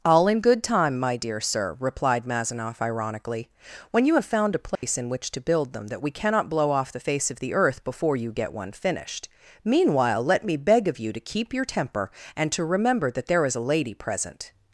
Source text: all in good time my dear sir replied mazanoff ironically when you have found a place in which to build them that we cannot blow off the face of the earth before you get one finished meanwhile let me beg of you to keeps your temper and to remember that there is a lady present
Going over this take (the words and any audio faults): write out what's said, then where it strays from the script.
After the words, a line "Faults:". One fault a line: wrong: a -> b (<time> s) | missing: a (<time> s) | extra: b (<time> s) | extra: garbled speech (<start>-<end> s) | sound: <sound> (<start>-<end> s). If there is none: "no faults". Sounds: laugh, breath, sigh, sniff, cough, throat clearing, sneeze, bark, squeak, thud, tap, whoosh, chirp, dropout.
all in good time my dear sir replied mazanoff ironically when you have found a place in which to build them that we cannot blow off the face of the earth before you get one finished meanwhile let me beg of you to keep your temper and to remember that there is a lady present
Faults:
sound: dropout (4.7-4.8 s)
wrong: keeps -> keep (11.2 s)